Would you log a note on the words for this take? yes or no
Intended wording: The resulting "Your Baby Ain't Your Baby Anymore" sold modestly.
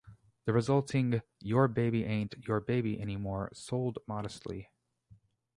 no